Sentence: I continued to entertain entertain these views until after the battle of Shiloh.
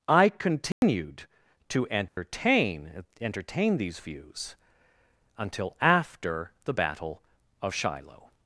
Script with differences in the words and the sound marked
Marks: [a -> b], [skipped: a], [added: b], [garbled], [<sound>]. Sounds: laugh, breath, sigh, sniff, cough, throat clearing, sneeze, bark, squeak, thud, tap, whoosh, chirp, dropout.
I continued [dropout] to entertain [dropout] entertain these views until after the battle of Shiloh.